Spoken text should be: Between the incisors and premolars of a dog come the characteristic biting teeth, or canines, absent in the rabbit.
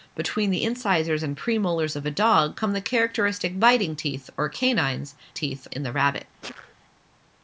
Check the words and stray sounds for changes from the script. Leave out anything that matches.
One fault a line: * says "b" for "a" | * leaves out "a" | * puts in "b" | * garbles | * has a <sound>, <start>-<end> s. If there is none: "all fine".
* says "teeth" for "absent"
* has a sneeze, 6.4-6.7 s